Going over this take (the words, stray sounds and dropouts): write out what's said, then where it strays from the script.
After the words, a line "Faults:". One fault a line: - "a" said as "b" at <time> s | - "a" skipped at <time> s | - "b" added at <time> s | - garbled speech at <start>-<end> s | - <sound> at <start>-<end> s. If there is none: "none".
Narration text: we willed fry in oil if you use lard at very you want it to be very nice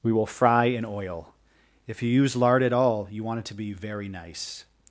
we will fry in oil if you use lard at all you want it to be very nice
Faults:
- "willed" said as "will" at 0.1 s
- "very" said as "all" at 2.7 s